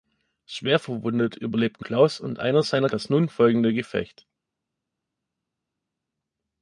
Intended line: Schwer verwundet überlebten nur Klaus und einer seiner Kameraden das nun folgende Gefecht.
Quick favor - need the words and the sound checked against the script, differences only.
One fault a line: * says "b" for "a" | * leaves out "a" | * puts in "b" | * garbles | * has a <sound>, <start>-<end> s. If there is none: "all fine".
* leaves out "nur"
* leaves out "Kameraden"